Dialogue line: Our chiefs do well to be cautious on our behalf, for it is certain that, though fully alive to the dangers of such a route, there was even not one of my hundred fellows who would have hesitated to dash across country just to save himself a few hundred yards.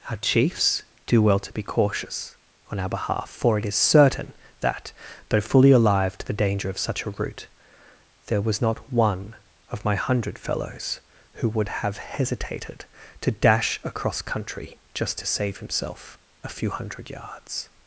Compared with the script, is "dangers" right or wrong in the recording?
wrong